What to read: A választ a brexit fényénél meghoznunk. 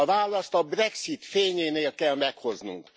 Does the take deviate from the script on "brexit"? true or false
false